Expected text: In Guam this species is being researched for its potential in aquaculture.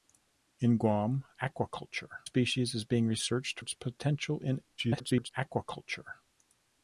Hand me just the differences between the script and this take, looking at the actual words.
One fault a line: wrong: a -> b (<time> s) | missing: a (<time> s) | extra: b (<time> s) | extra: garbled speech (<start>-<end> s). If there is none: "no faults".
wrong: this -> aquaculture (1.4 s)
missing: for (3.6 s)
extra: garbled speech (4.8-5.3 s)